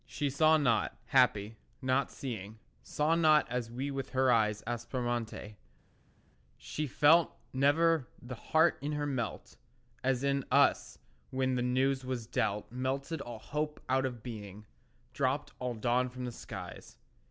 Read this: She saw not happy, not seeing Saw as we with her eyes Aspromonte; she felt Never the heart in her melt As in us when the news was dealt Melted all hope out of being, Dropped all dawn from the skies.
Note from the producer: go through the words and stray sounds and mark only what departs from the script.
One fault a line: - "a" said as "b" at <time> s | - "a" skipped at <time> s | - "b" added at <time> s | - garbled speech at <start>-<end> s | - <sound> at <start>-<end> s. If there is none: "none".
- "not" added at 3.1 s